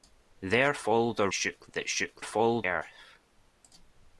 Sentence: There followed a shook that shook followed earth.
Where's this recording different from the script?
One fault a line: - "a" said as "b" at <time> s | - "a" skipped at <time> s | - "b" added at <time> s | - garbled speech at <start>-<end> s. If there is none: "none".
none